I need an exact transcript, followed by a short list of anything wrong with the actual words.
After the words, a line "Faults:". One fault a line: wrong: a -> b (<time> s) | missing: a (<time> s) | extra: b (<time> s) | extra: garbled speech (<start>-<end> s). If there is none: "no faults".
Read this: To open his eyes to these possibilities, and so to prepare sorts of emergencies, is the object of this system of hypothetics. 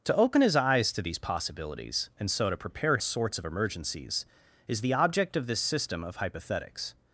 To open his eyes to these possibilities, and so to prepare sorts of emergencies, is the object of this system of hypothetics.
Faults:
no faults